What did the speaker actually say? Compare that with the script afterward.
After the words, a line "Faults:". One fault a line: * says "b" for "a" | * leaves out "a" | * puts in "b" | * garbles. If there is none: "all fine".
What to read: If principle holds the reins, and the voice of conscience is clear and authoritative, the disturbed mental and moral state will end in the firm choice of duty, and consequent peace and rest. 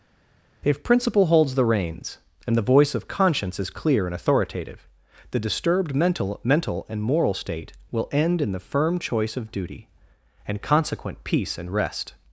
If principle holds the reins, and the voice of conscience is clear and authoritative, the disturbed mental mental and moral state will end in the firm choice of duty, and consequent peace and rest.
Faults:
* puts in "mental"